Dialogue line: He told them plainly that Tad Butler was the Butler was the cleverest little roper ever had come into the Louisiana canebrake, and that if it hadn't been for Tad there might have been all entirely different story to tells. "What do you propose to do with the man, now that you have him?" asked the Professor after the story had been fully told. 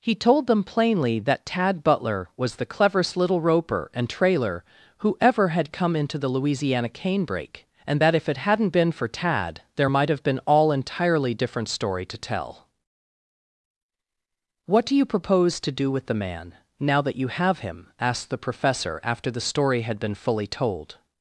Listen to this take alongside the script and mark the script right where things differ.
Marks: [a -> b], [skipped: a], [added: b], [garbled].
He told them plainly that Tad Butler was the [Butler was the cleverest little roper -> cleverest little roper and trailer who] ever had come into the Louisiana canebrake, and that if it hadn't been for Tad there might have been all entirely different story to [tells. -> tell] "What do you propose to do with the man, now that you have him?" asked the Professor after the story had been fully told.